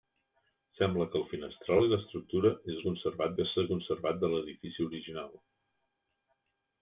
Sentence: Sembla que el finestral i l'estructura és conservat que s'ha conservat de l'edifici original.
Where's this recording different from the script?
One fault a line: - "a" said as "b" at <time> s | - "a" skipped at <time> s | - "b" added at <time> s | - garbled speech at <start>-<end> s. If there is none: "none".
none